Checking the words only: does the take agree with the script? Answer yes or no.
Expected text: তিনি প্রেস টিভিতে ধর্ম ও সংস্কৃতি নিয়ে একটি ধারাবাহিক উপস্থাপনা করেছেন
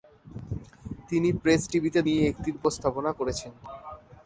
no